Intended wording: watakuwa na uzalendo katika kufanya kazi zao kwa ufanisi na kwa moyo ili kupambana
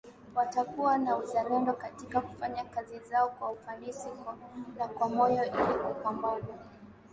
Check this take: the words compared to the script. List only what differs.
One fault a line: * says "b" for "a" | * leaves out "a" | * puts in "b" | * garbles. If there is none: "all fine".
all fine